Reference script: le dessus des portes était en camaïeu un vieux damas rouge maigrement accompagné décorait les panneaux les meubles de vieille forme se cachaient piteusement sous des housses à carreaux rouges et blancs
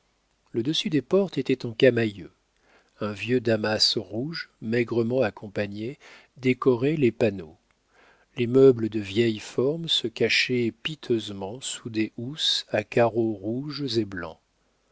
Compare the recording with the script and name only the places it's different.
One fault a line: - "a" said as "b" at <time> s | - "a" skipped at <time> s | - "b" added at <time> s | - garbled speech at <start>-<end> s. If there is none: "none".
none